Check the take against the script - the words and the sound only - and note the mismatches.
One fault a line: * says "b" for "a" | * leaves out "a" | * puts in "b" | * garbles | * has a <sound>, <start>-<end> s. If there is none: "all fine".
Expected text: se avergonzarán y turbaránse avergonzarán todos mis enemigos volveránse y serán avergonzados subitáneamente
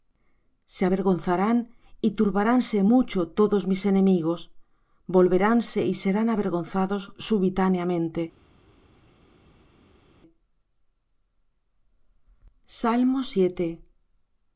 * says "mucho" for "avergonzarán"